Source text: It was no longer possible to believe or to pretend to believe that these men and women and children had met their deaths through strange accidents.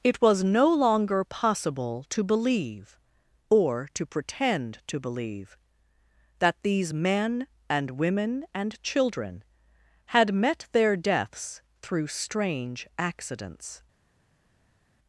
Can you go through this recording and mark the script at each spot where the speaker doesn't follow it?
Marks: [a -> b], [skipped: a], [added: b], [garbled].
It was no longer possible to believe or to pretend to believe that these men and women and children had met their deaths through strange accidents.